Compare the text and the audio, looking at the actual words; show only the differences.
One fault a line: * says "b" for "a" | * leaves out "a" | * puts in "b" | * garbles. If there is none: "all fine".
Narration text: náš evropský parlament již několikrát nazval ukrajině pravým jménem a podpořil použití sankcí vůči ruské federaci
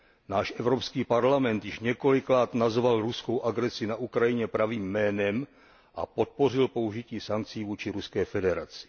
* puts in "ruskou agresi na"